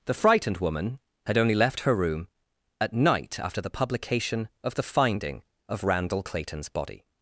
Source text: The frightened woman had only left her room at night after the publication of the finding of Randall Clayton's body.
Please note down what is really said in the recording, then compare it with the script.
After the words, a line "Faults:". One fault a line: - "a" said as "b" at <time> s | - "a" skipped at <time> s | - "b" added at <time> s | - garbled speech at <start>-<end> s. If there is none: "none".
The frightened woman had only left her room at night after the publication of the finding of Randall Clayton's body.
Faults:
none